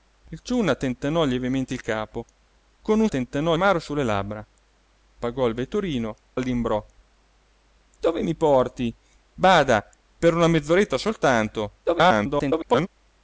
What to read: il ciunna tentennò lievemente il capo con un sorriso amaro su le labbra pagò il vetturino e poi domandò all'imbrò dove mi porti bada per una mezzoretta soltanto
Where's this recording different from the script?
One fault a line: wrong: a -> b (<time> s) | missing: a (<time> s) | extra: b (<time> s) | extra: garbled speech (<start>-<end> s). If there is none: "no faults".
wrong: sorriso -> tentennò (3.1 s)
missing: e poi domandò (6.1 s)
extra: garbled speech (11.9-12.9 s)